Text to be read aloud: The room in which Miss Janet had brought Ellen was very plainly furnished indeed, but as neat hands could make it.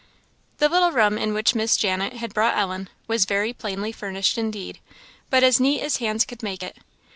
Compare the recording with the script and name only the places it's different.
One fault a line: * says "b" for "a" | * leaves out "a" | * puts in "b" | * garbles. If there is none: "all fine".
* puts in "little"
* puts in "as"